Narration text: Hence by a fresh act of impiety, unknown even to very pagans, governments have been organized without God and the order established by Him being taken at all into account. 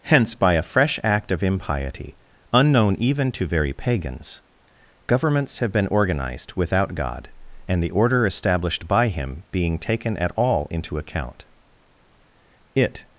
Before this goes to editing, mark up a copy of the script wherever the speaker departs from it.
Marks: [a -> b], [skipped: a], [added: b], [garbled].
Hence by a fresh act of impiety, unknown even to very pagans, governments have been organized without God and the order established by Him being taken at all into account. [added: It]